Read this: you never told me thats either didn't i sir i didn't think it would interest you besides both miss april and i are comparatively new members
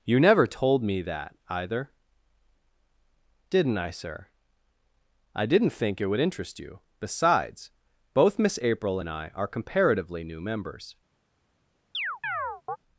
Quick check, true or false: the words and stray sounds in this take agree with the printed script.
false